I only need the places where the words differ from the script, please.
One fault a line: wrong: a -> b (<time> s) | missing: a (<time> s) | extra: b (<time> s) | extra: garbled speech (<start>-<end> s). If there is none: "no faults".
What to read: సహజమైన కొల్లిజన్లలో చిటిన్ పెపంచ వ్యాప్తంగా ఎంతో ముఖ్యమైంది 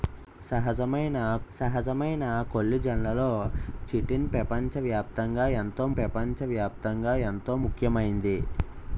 extra: సహజమైన (1.5 s)
extra: పెపంచ వ్యాప్తంగా ఎంతో (6.0 s)